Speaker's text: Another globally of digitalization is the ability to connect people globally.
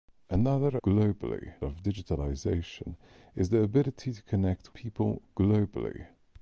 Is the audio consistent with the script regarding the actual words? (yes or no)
yes